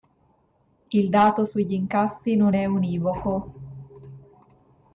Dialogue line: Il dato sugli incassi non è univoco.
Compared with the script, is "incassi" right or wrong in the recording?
right